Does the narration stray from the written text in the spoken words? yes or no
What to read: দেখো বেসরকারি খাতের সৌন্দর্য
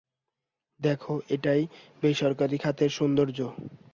yes